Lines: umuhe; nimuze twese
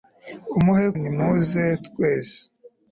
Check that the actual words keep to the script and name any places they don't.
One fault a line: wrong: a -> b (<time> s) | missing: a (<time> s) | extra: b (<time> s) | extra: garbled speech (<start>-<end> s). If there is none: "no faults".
no faults